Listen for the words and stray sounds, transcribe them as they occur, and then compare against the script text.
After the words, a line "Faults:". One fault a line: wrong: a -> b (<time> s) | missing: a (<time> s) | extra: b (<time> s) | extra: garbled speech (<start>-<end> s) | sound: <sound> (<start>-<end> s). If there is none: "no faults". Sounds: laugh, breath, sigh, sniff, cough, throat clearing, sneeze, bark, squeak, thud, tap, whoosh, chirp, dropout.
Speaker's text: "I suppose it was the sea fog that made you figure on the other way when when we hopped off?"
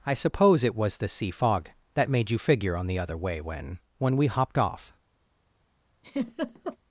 "I suppose it was the sea fog that made you figure on the other way when when we hopped off?"
Faults:
sound: laugh (6.0-6.8 s)